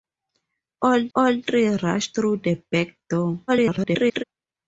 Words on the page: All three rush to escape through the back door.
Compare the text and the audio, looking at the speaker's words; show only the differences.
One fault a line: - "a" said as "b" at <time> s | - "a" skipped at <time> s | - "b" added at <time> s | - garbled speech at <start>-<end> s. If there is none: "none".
- "all" added at 1.1 s
- "to escape" skipped at 2.1 s
- garbled speech at 3.5-4.2 s